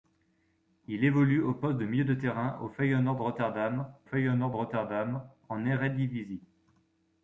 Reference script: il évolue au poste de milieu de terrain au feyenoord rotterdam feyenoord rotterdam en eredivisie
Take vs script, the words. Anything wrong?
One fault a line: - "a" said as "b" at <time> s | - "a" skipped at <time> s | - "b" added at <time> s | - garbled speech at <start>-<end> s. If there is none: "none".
none